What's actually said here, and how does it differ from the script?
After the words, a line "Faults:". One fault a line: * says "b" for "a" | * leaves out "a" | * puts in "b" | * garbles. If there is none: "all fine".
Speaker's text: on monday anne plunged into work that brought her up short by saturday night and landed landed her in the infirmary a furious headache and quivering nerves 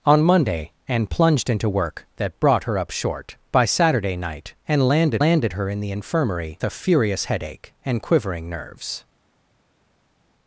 on monday anne plunged into work that brought her up short by saturday night and landed landed her in the infirmary a furious headache and quivering nerves
Faults:
all fine